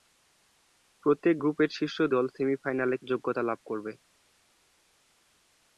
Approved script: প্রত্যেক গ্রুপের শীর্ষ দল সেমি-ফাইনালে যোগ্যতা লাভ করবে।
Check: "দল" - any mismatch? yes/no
no